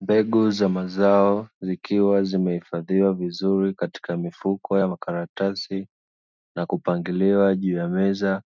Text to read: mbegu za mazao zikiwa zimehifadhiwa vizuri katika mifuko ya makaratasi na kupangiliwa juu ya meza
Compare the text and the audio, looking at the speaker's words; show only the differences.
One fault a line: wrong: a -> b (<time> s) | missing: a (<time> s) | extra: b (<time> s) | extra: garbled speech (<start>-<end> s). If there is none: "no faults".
no faults